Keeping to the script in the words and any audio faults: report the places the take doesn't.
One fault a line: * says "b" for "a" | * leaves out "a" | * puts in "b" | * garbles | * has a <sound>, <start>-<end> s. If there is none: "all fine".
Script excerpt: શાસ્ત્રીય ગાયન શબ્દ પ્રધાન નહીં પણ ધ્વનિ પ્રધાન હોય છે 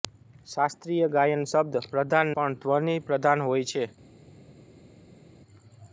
* leaves out "નહીં"